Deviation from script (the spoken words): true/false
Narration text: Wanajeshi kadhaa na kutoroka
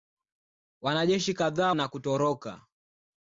false